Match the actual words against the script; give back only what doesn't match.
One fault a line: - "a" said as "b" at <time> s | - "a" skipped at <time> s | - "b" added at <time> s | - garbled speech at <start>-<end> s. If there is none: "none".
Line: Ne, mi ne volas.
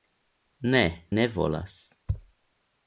- "mi" skipped at 0.8 s